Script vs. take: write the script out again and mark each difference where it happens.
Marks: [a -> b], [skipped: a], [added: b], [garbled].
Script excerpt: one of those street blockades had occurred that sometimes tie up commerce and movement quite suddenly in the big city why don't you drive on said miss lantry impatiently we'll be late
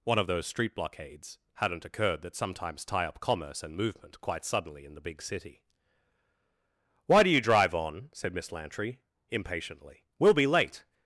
one of those street blockades [had -> hadn't] occurred that sometimes tie up commerce and movement quite suddenly in the big city why [don't -> do] you drive on said miss lantry impatiently we'll be late